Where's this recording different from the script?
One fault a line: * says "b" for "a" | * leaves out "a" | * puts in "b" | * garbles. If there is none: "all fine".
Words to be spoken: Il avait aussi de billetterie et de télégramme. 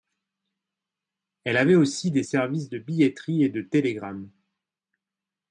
* says "Elle" for "Il"
* puts in "des services"